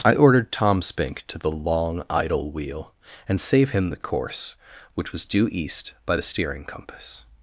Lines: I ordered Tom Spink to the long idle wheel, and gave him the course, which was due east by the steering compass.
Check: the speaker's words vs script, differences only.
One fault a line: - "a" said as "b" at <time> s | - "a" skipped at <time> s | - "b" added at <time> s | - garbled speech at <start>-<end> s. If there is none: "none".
- "gave" said as "save" at 3.4 s